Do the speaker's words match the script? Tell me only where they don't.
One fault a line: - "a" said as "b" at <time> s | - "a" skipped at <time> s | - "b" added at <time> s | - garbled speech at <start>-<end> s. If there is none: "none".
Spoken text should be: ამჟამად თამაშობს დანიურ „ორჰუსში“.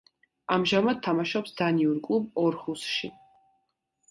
- "კლუბ" added at 2.1 s